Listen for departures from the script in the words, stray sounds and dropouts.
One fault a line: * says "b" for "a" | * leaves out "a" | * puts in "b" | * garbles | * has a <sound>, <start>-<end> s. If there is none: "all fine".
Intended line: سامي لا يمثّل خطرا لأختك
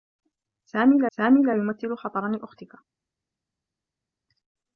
* puts in "سامي لا"